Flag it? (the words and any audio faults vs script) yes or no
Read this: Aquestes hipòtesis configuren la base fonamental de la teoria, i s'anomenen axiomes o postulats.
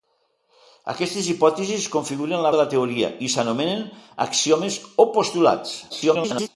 yes